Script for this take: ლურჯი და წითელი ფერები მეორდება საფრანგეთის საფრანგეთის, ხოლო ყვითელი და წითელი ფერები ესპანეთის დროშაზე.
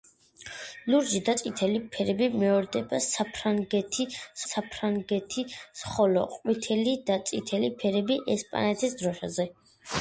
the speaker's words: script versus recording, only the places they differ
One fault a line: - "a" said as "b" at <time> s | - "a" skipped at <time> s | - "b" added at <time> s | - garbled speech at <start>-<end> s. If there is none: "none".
none